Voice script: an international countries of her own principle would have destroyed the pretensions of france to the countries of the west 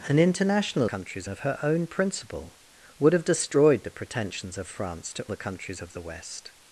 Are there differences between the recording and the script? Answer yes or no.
no